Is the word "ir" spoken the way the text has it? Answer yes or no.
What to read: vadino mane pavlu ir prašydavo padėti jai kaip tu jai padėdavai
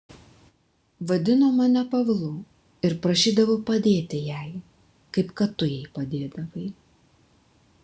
yes